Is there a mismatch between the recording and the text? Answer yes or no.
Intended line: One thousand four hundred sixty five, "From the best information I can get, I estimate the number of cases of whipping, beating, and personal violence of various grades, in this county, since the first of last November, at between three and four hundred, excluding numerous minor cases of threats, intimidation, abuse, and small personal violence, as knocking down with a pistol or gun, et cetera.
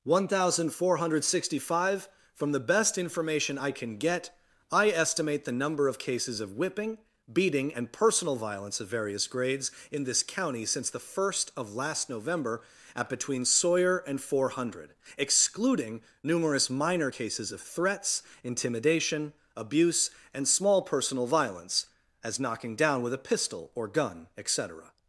yes